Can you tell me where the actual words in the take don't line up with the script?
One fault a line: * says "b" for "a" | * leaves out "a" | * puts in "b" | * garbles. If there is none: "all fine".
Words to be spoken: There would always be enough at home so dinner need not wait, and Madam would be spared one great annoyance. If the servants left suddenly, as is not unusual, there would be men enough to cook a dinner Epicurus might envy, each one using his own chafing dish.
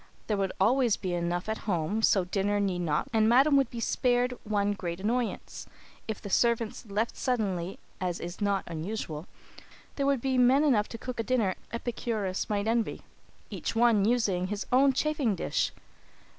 * leaves out "wait"